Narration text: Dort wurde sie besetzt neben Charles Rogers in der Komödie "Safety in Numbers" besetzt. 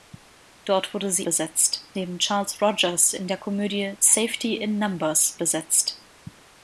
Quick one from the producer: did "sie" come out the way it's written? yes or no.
yes